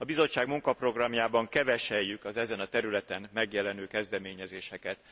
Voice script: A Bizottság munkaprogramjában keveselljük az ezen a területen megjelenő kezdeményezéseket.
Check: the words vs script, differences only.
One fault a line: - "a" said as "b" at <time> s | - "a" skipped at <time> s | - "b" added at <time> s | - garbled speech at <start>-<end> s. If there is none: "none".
none